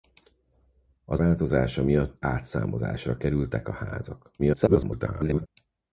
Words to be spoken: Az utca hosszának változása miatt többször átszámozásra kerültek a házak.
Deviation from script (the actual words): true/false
true